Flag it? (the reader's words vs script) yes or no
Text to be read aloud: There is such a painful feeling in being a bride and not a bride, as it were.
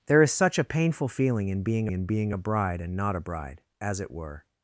yes